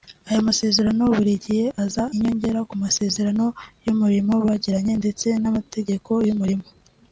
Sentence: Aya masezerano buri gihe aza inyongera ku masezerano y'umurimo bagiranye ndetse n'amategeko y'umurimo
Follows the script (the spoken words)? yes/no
yes